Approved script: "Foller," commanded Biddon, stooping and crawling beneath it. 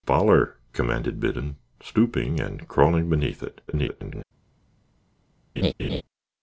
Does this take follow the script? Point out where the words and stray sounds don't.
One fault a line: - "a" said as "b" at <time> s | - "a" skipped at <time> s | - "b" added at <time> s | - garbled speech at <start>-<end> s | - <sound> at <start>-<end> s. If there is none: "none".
- garbled speech at 3.7-4.2 s
- laugh at 5.6-6.0 s